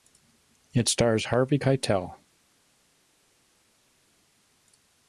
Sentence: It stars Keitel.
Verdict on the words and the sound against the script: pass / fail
fail